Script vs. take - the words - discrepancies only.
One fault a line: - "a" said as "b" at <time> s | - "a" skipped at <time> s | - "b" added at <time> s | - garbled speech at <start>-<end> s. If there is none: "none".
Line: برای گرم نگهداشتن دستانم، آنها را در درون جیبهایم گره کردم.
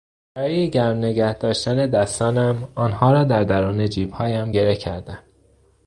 none